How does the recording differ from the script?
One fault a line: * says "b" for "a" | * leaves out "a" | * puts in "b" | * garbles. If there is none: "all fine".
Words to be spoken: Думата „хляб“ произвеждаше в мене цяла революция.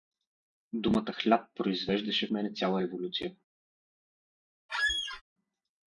all fine